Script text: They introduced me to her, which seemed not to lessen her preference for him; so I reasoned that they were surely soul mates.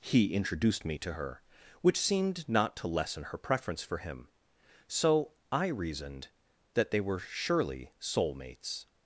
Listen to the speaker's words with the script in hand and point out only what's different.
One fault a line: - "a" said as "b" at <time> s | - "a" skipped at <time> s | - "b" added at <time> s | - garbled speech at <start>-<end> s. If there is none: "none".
- "They" said as "He" at 0.0 s